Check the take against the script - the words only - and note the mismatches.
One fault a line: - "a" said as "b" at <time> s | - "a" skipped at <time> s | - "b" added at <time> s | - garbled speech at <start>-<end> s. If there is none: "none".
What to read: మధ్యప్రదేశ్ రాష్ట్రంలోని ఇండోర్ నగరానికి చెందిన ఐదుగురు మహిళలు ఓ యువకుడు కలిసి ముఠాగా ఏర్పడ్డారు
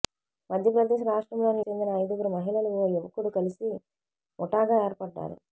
- "ఇండోర్ నగరానికి" skipped at 1.6 s